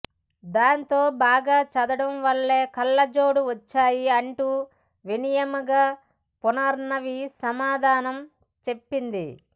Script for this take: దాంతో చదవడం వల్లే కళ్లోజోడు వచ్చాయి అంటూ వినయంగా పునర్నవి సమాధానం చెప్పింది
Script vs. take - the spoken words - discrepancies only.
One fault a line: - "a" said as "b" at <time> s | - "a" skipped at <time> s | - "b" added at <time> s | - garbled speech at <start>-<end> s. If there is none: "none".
- "బాగా" added at 1.2 s